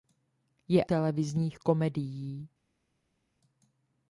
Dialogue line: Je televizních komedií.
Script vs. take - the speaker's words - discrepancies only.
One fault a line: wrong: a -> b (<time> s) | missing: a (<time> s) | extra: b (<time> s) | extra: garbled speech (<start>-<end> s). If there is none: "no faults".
no faults